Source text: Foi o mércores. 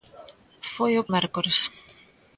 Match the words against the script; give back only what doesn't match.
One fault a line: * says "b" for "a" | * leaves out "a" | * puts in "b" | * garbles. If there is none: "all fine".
all fine